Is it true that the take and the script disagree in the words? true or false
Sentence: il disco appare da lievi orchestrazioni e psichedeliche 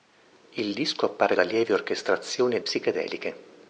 false